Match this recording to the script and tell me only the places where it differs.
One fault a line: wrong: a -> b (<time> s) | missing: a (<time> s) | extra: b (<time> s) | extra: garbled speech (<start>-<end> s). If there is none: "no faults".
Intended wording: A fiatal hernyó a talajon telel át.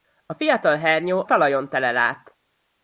missing: a (1.2 s)